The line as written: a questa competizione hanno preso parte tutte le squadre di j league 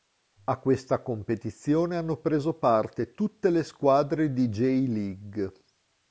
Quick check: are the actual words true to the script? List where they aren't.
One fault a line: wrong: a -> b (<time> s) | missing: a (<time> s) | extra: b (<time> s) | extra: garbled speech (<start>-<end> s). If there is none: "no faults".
no faults